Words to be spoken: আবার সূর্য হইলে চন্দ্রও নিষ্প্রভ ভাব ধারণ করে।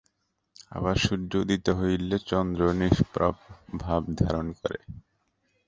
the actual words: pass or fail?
fail